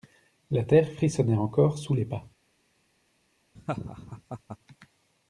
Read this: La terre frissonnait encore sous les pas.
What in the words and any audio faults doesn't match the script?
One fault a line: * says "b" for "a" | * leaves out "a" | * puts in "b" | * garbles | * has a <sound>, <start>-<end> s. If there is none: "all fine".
* has a laugh, 3.6-4.6 s